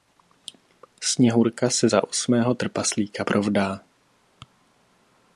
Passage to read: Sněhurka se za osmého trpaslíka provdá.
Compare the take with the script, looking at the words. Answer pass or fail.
pass